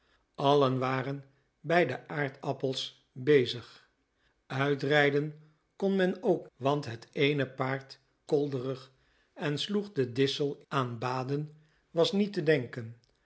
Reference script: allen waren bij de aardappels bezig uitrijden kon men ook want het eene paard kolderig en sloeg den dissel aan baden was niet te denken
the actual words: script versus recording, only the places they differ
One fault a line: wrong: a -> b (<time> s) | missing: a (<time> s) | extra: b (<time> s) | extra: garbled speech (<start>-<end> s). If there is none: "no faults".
no faults